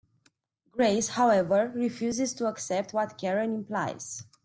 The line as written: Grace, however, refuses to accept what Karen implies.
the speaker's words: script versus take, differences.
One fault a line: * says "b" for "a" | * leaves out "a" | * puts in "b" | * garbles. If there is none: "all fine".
all fine